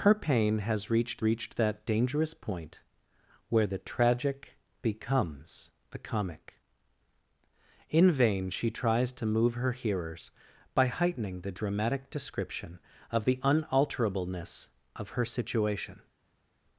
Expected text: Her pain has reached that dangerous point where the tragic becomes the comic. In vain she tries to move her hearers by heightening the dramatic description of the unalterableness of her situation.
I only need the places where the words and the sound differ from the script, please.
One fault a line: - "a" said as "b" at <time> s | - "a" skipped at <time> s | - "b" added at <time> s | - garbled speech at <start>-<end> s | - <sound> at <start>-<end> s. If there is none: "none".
- "reached" added at 1.2 s